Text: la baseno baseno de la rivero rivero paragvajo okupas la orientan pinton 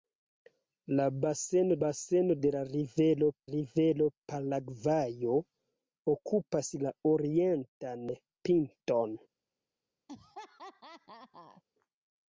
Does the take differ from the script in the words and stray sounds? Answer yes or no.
yes